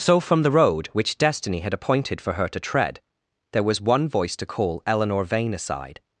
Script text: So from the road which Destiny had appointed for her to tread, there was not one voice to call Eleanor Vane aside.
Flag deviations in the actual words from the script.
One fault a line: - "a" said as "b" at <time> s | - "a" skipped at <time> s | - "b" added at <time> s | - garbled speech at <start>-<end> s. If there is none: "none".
- "not" skipped at 3.8 s